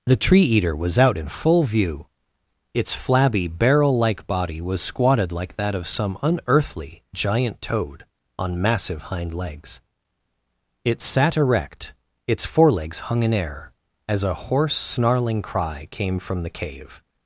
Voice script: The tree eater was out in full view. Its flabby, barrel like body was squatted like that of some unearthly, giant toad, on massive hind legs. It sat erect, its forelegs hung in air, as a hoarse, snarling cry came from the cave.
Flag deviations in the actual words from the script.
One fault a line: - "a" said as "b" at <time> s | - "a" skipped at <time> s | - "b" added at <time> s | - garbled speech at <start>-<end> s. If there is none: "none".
none